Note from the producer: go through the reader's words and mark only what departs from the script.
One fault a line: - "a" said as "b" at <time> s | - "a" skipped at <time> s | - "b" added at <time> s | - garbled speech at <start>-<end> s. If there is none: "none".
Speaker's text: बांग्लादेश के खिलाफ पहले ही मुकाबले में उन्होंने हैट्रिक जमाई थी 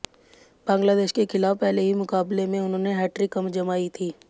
none